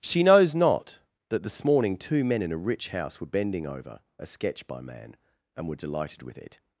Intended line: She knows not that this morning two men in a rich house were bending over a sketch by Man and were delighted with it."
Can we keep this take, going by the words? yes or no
yes